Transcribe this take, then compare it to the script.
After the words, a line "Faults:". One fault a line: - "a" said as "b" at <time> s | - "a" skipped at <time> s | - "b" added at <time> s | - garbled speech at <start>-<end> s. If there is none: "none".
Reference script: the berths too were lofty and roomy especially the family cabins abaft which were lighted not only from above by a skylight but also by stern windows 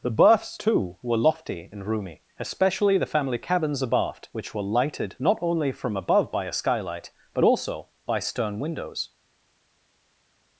the berths too were lofty and roomy especially the family cabins abaft which were lighted not only from above by a skylight but also by stern windows
Faults:
none